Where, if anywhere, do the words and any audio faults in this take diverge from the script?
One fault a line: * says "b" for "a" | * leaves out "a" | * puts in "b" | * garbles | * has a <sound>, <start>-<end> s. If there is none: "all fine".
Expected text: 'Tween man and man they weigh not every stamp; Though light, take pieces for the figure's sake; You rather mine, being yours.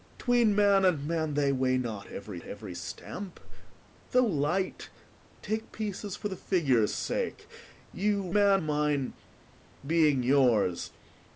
* puts in "every"
* says "man" for "rather"